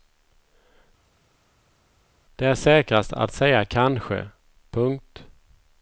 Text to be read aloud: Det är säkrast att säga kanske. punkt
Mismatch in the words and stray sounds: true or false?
false